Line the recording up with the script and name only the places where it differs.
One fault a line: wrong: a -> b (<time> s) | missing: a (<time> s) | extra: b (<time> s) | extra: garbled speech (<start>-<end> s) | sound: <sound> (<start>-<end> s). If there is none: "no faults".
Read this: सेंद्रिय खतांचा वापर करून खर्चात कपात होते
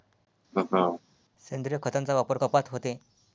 sound: laugh (0.5-1.0 s)
missing: करून खर्चात (2.4 s)